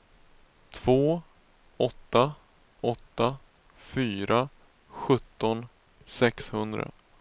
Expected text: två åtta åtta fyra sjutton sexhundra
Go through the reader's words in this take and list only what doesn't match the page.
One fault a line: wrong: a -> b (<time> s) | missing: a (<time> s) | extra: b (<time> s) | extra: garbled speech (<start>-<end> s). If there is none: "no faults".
no faults